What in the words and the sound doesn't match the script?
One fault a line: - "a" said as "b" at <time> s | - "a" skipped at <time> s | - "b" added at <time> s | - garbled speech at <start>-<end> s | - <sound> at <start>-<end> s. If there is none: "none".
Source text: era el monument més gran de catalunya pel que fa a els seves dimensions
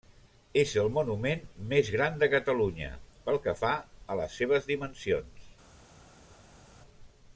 - "era" said as "és" at 0.6 s
- "els" said as "les" at 4.2 s